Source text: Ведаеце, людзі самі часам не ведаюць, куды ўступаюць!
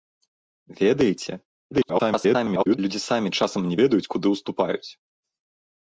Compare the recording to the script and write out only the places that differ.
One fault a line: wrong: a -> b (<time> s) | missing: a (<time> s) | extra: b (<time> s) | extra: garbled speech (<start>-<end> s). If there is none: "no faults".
extra: garbled speech (1.7-2.8 s)